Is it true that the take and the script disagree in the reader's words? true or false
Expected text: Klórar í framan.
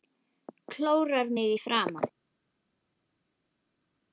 true